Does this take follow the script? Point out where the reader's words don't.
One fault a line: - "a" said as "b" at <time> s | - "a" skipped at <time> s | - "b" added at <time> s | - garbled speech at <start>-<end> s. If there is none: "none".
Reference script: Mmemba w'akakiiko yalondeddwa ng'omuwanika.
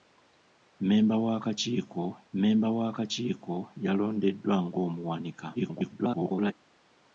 - "mmemba w'akakiiko" added at 2.3 s
- garbled speech at 5.5-6.5 s